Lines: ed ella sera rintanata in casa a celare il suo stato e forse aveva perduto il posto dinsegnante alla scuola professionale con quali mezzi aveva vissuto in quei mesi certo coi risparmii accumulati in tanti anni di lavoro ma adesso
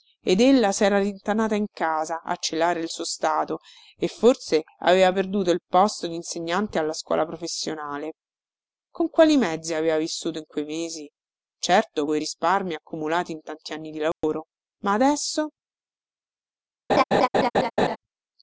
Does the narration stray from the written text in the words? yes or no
no